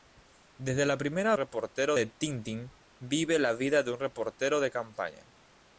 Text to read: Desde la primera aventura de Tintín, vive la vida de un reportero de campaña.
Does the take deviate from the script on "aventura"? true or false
true